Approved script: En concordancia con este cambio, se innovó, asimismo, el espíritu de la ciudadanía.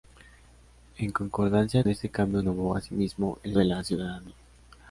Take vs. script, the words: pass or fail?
fail